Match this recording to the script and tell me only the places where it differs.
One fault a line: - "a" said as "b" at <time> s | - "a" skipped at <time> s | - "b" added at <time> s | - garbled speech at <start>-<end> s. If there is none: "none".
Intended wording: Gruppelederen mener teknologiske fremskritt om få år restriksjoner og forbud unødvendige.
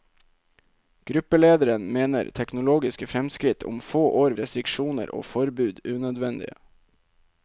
none